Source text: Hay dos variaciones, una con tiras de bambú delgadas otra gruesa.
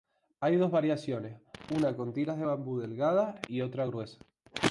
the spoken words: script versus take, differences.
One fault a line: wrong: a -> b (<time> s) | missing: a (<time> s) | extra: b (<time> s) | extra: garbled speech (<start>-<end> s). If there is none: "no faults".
extra: y (3.5 s)